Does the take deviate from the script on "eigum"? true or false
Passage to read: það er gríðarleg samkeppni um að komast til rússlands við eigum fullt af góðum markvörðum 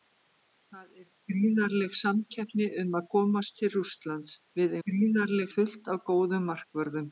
true